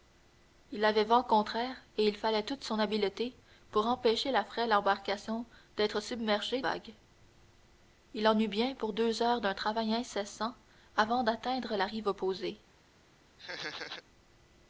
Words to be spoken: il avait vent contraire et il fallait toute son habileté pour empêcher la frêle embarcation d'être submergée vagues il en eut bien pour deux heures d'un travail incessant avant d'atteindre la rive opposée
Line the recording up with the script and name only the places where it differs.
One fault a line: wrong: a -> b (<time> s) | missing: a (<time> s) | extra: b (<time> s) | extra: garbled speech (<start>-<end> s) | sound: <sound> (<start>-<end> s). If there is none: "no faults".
sound: laugh (13.4-14.0 s)